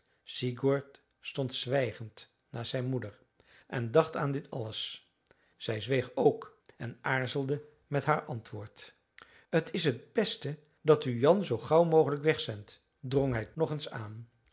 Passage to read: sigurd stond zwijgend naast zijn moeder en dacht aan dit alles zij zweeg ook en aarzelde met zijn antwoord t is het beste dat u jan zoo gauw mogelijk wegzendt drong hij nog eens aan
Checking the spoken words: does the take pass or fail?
fail